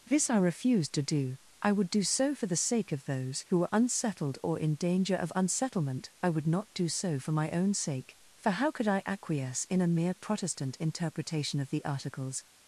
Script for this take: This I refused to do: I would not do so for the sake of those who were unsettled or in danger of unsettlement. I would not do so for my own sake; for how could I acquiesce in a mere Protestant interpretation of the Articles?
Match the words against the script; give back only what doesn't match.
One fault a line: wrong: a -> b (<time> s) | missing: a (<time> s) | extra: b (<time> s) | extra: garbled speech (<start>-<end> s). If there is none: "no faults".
missing: not (1.9 s)